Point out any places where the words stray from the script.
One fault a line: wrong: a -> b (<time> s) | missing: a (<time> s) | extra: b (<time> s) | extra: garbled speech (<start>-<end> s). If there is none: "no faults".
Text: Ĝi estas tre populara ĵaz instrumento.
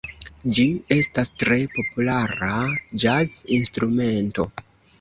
no faults